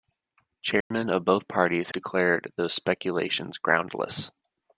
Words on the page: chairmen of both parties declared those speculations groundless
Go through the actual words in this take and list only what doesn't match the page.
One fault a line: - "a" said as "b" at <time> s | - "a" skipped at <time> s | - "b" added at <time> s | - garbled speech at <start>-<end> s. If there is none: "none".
none